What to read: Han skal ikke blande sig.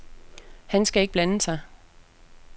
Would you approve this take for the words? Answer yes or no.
yes